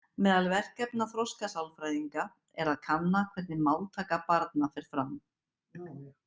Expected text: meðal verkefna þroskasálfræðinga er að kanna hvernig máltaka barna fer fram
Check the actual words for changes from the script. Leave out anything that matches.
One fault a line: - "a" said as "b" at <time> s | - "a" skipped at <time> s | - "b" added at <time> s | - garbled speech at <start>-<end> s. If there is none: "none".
none